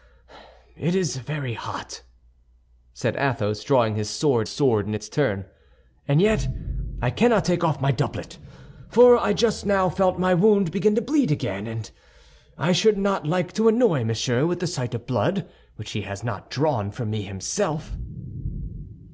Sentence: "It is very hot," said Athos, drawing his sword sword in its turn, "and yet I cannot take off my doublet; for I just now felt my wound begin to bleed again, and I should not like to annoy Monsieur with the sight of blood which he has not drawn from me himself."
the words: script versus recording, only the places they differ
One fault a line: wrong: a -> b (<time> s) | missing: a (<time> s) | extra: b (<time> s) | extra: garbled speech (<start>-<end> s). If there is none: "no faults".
no faults